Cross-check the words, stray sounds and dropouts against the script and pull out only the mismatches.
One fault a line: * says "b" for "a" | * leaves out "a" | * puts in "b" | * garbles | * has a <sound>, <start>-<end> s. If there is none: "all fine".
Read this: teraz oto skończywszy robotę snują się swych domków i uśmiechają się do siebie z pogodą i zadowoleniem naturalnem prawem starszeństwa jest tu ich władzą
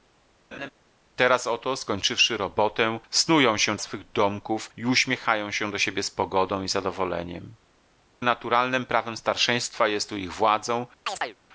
* has a laugh, 0.5-0.7 s
* has a chirp, 11.1-11.4 s